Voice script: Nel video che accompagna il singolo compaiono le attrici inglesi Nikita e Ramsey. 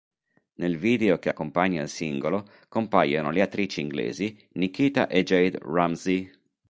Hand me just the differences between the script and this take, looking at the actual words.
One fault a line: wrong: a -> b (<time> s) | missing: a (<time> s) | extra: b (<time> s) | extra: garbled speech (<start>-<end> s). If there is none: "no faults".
extra: Jade (5.2 s)